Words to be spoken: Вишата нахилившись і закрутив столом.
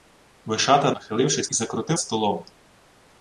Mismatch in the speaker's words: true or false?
false